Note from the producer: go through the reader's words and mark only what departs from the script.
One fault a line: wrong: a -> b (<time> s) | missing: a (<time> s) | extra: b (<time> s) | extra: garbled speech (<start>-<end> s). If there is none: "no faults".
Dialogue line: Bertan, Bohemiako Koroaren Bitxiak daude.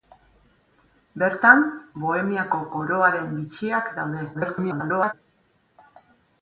extra: garbled speech (4.3-5.1 s)